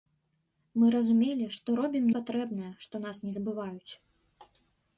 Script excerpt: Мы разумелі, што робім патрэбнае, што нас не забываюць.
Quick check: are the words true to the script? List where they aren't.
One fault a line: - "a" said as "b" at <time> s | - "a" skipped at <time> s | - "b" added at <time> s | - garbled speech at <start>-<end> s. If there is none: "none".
none